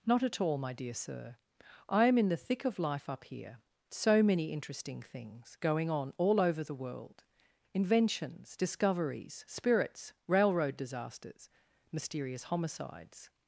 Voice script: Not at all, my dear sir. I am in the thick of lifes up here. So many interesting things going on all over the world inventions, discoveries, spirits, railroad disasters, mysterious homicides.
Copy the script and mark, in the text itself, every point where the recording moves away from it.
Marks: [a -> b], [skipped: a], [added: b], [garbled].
Not at all, my dear sir. I am in the thick of [lifes -> life] up here. So many interesting things going on all over the world inventions, discoveries, spirits, railroad disasters, mysterious homicides.